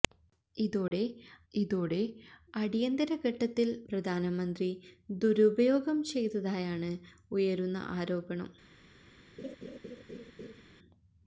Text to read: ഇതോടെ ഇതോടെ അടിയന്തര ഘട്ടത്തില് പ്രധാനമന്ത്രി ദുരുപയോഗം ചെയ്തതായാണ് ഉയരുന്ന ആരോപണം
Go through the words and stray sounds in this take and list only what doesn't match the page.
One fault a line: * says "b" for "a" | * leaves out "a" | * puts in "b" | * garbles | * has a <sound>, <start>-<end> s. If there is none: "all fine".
* has a dropout, 0.9-0.9 s
* has a laugh, 9.4-10.6 s